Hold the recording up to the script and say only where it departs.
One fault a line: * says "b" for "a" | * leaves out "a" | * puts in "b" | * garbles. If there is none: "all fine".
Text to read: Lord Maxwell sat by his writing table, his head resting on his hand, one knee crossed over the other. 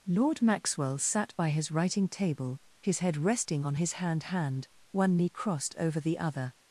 * puts in "hand"